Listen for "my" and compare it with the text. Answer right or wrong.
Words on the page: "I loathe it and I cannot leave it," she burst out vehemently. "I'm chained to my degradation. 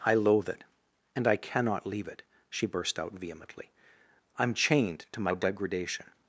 right